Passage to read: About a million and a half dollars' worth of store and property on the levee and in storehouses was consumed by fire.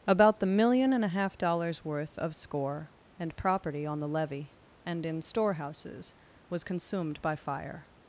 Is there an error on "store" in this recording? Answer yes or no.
yes